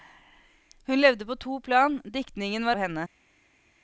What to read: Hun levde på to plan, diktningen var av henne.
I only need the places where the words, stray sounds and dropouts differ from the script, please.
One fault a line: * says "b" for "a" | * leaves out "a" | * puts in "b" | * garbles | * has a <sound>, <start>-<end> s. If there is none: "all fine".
all fine